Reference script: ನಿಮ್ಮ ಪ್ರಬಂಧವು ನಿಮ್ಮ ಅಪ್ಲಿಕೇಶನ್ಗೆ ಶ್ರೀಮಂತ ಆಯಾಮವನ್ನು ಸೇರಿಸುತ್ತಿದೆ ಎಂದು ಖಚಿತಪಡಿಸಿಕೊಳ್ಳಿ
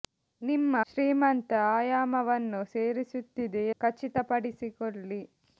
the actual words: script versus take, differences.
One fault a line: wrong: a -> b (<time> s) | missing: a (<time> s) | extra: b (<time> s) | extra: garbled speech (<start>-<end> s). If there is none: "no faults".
missing: ಪ್ರಬಂಧವು ನಿಮ್ಮ ಅಪ್ಲಿಕೇಶನ್ಗೆ (0.8 s)
missing: ಎಂದು (3.6 s)